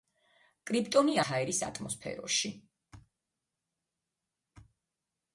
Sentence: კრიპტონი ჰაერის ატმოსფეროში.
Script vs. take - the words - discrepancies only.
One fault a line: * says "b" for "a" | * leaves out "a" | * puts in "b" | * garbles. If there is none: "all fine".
all fine